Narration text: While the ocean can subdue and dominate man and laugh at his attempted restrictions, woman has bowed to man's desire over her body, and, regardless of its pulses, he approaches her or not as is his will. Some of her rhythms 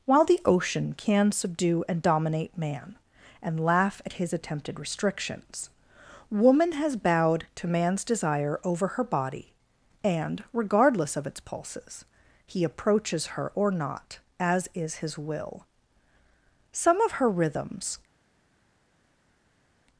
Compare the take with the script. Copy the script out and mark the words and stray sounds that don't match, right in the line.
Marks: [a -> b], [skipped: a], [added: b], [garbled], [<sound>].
While the ocean can subdue and dominate man and laugh at his attempted restrictions, woman has bowed to man's desire over her body, and, regardless of its pulses, he approaches her or not as is his will. Some of her rhythms